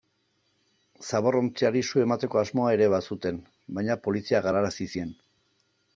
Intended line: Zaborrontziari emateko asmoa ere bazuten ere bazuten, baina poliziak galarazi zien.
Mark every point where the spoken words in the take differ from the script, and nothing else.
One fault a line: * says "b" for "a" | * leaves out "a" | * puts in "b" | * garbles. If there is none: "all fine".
* puts in "su"
* leaves out "ere bazuten"